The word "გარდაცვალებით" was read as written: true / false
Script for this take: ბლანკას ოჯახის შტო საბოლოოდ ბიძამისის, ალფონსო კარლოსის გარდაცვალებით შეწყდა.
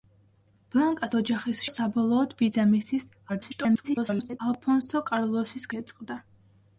false